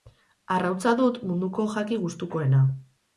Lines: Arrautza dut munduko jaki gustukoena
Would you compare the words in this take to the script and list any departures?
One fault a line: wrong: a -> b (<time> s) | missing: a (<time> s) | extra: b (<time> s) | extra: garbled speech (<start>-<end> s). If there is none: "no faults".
no faults